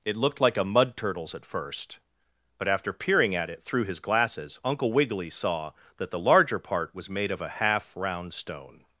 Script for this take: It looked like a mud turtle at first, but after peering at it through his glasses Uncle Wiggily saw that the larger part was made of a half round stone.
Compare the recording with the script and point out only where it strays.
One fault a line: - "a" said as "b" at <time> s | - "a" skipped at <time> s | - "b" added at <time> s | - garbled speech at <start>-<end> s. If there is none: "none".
- "turtle" said as "turtles" at 1.0 s